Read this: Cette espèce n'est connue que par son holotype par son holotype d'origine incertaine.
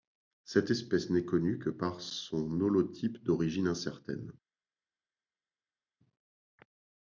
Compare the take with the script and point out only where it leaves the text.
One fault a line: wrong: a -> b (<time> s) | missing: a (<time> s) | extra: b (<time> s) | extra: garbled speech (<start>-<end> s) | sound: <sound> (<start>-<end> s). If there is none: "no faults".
missing: par son holotype (3.2 s)